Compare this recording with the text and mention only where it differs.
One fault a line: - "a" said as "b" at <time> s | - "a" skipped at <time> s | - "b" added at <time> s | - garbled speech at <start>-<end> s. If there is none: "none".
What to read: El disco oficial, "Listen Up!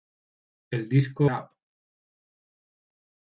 - "oficial Listen" skipped at 1.3 s